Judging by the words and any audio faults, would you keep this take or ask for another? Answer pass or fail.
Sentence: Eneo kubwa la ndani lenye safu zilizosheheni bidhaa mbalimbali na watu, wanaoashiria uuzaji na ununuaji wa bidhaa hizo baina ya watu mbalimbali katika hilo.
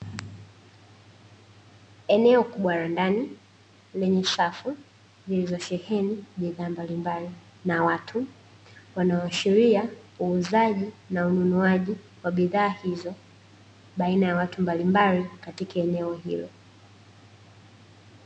fail